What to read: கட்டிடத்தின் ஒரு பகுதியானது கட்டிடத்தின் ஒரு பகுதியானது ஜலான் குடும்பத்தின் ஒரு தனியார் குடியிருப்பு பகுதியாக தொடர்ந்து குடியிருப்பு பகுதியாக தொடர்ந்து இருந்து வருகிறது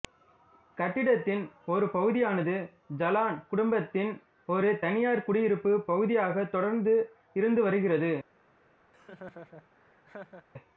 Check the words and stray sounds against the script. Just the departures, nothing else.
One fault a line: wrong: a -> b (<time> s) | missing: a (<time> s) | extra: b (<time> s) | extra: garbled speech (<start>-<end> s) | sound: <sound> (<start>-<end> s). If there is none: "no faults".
missing: கட்டிடத்தின் ஒரு பகுதியானது (2.5 s)
missing: குடியிருப்பு பகுதியாக தொடர்ந்து (7.0 s)
sound: laugh (8.9-10.5 s)